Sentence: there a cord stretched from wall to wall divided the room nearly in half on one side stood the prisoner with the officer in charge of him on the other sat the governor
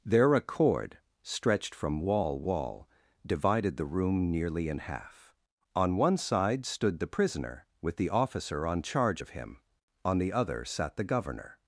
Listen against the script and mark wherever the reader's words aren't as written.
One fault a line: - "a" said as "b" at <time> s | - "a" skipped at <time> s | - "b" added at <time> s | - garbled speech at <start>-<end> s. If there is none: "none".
- "to" skipped at 2.4 s
- "in" said as "on" at 8.7 s